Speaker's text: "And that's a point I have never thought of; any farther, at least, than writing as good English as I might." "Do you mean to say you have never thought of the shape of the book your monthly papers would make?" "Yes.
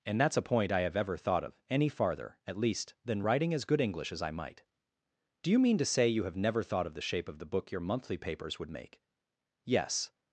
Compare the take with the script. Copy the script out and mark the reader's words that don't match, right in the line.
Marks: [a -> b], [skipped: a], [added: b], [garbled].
"And that's a point I have [never -> ever] thought of; any farther, at least, than writing as good English as I might." "Do you mean to say you have never thought of the shape of the book your monthly papers would make?" "Yes.